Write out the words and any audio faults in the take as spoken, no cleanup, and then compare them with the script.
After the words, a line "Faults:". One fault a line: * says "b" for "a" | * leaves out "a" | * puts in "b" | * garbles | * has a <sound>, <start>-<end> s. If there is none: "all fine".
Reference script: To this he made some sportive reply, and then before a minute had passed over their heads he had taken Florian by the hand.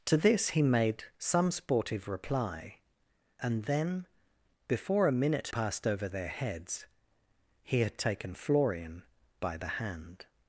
To this he made some sportive reply, and then before a minute passed over their heads he had taken Florian by the hand.
Faults:
* leaves out "had"